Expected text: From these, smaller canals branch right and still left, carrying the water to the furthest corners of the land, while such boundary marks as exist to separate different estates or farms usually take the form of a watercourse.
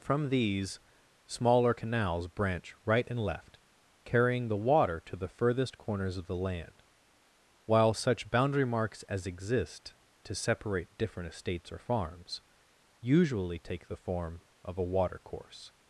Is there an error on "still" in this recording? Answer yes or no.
yes